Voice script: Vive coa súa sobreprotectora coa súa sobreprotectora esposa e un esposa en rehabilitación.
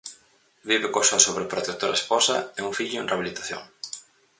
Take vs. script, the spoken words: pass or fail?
fail